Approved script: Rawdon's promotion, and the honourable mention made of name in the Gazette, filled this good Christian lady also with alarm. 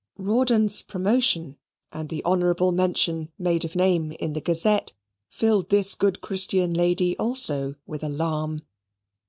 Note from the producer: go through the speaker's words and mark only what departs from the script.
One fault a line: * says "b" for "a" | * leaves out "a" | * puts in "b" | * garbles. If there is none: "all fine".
all fine